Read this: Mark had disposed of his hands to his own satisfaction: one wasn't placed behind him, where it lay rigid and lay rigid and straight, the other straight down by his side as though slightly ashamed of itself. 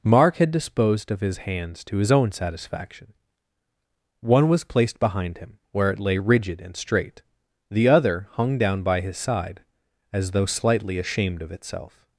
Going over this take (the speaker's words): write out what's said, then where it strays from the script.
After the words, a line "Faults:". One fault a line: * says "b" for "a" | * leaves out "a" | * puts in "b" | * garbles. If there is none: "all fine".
Mark had disposed of his hands to his own satisfaction: one was placed behind him, where it lay rigid and straight, the other hung down by his side as though slightly ashamed of itself.
Faults:
* says "was" for "wasn't"
* leaves out "lay rigid and"
* says "hung" for "straight"